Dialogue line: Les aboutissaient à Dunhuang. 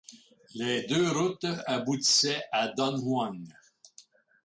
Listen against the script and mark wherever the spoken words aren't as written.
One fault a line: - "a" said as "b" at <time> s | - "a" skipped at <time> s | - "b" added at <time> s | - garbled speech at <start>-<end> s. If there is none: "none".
- "deux routes" added at 0.9 s